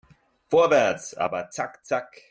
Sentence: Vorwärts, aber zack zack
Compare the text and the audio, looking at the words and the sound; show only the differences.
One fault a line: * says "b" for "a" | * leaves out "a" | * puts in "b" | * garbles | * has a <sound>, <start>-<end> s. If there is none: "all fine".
all fine